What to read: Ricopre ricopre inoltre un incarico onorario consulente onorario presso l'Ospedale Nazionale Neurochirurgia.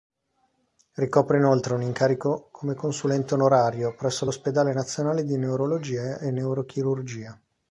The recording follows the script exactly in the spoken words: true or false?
false